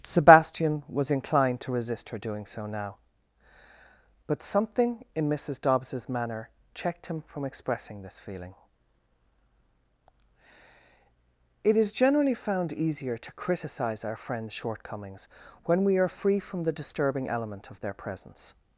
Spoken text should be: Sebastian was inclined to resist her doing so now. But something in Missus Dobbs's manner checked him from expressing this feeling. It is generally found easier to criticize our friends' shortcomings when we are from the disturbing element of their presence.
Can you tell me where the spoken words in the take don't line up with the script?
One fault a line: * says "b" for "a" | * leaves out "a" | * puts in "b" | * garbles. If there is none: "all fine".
* puts in "free"